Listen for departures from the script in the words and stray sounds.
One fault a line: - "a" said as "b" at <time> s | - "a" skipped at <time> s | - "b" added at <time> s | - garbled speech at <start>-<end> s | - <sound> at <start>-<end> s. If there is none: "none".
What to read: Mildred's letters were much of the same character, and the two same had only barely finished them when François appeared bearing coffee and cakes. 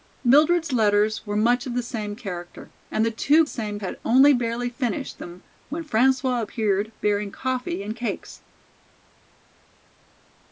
none